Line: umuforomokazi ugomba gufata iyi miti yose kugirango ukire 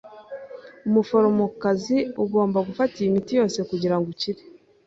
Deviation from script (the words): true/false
false